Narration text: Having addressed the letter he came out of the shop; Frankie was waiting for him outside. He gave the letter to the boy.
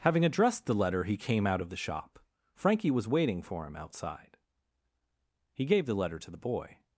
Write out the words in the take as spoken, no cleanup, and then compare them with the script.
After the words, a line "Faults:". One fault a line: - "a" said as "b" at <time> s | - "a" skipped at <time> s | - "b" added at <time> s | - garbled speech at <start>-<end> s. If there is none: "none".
Having addressed the letter he came out of the shop; Frankie was waiting for him outside. He gave the letter to the boy.
Faults:
none